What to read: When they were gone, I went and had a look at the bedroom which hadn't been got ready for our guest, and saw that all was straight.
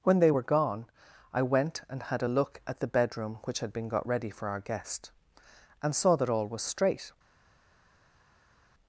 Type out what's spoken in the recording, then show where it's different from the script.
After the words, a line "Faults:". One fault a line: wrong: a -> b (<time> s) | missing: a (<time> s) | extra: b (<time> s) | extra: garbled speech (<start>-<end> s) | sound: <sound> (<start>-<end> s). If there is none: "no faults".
When they were gone, I went and had a look at the bedroom which had been got ready for our guest, and saw that all was straight.
Faults:
wrong: hadn't -> had (3.6 s)